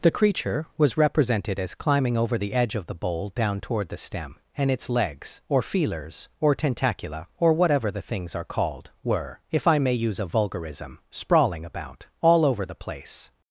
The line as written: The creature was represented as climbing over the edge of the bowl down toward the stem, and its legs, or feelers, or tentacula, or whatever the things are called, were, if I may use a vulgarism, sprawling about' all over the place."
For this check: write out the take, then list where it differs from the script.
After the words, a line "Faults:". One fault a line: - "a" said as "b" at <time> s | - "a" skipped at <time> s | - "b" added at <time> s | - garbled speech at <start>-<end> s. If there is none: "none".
The creature was represented as climbing over the edge of the bowl down toward the stem, and its legs, or feelers, or tentacula, or whatever the things are called, were, if I may use a vulgarism, sprawling about' all over the place."
Faults:
none